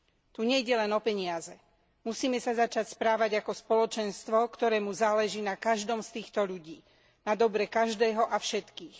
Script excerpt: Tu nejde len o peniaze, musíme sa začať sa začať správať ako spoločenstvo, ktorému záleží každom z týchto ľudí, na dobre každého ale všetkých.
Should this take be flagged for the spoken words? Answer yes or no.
yes